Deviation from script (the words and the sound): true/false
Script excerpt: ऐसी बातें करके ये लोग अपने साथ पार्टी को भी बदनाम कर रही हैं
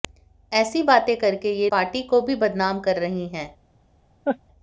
true